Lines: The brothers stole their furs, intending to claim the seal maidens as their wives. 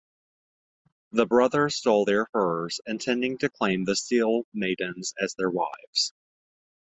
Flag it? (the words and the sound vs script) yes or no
no